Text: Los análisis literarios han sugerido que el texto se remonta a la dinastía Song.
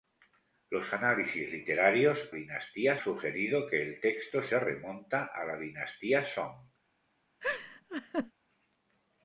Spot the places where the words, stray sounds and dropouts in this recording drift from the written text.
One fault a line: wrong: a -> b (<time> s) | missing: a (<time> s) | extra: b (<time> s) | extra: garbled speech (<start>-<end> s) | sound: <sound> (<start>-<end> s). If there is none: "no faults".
wrong: han -> dinastía (2.3 s)
sound: laugh (7.4-8.3 s)